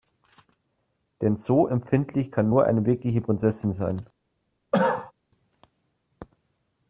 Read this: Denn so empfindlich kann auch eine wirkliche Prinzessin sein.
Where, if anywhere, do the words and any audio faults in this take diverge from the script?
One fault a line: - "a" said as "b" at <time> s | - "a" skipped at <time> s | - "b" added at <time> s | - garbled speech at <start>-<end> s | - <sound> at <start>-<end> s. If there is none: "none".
- "auch" said as "nur" at 2.5 s
- cough at 4.7-5.1 s